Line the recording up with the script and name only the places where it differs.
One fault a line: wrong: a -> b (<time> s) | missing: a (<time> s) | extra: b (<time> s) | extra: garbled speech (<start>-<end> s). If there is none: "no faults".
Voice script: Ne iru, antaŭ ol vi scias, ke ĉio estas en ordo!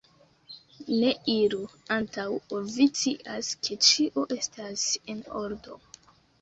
no faults